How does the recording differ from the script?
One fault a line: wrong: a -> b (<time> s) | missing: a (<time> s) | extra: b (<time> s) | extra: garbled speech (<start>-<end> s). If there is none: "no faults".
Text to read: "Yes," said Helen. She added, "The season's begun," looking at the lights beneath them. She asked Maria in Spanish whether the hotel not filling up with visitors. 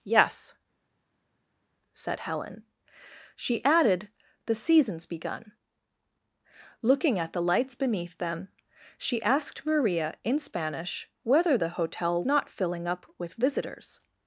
no faults